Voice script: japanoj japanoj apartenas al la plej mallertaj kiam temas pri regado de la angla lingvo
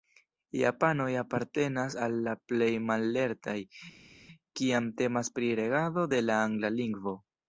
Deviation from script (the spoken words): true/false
true